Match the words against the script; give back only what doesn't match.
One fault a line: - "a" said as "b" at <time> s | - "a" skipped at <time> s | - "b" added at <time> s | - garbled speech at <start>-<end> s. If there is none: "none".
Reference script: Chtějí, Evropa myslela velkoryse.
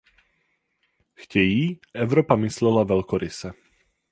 none